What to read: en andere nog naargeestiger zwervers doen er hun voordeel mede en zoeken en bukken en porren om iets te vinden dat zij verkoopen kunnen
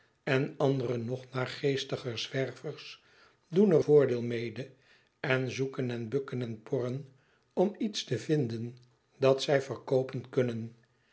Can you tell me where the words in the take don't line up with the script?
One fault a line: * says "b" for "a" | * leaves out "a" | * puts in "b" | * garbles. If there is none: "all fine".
* leaves out "hun"